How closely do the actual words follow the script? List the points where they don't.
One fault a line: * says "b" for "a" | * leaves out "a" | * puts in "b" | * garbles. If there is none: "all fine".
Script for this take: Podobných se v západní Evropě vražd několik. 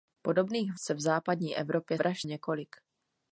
all fine